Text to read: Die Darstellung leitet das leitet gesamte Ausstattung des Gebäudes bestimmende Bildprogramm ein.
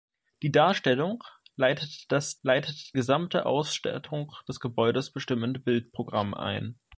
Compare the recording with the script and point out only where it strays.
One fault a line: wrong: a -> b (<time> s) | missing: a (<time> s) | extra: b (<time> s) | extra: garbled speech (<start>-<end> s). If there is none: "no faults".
no faults